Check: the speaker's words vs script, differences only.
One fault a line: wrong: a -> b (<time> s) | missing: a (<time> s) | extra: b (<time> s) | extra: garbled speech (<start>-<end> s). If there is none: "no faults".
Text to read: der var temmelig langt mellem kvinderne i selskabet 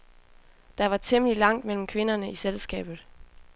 no faults